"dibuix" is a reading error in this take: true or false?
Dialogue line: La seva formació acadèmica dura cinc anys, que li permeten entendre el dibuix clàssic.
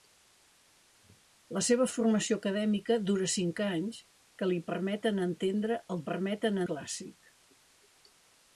true